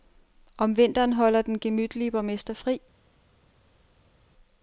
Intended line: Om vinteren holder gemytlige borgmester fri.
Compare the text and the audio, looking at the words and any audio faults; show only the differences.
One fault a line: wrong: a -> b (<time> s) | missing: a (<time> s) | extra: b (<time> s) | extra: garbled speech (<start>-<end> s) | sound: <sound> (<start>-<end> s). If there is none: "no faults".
extra: den (1.4 s)